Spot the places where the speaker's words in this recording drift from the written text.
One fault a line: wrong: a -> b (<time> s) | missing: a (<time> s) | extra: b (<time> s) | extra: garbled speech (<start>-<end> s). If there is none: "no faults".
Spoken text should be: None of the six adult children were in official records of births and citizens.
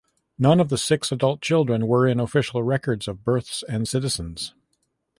no faults